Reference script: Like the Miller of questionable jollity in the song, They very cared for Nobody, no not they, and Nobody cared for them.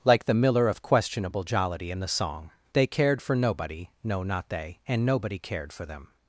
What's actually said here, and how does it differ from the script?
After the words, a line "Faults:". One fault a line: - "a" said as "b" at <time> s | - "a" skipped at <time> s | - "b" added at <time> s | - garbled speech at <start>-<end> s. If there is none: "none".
Like the Miller of questionable jollity in the song, They cared for Nobody, no not they, and Nobody cared for them.
Faults:
- "very" skipped at 2.9 s